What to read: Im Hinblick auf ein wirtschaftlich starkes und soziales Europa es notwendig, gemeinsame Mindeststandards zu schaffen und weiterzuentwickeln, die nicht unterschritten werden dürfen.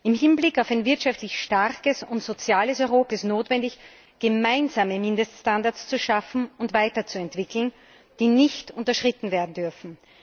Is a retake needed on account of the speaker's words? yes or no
no